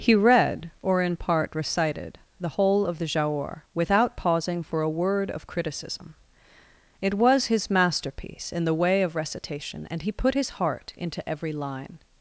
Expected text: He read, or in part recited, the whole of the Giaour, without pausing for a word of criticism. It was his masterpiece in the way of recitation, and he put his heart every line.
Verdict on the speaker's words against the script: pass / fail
fail